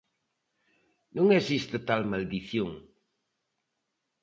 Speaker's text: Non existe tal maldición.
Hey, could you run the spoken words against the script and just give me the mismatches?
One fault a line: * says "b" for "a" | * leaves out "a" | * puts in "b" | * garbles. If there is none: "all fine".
all fine